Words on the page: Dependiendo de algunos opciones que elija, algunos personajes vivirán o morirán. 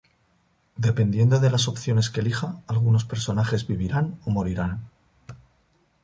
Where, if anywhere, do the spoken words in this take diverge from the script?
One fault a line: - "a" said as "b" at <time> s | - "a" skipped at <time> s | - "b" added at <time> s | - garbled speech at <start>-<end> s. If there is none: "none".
- "algunos" said as "las" at 1.5 s